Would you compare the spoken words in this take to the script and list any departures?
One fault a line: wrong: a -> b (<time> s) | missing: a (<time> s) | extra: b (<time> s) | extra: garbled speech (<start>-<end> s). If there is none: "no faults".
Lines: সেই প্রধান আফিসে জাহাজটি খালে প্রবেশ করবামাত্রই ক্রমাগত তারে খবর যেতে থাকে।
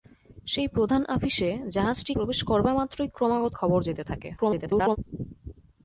missing: খালে (2.1 s)
missing: তারে (3.5 s)
extra: garbled speech (4.4-5.0 s)